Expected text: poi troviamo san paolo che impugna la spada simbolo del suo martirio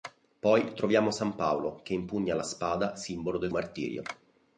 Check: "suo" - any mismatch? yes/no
yes